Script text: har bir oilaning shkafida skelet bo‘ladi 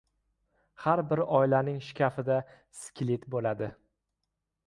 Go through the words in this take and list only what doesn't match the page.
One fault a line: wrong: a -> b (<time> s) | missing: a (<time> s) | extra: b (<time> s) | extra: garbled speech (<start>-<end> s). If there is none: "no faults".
no faults